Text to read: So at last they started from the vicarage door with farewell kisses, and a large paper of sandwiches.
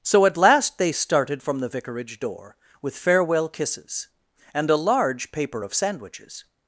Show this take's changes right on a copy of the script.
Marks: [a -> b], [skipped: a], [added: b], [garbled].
So at last they started from the vicarage door with farewell kisses, and a large paper of sandwiches.